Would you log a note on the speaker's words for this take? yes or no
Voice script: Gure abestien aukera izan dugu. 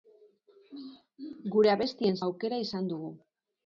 no